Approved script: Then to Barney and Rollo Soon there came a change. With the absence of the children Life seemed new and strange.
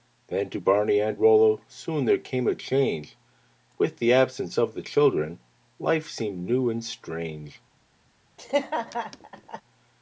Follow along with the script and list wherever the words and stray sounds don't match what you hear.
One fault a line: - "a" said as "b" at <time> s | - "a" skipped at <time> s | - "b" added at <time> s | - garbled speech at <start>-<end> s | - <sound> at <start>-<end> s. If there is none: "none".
- laugh at 8.4-9.6 s